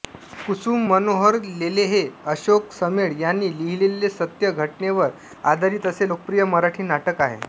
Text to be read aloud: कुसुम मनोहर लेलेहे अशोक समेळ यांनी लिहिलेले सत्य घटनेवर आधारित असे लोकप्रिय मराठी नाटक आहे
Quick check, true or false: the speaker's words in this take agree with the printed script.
true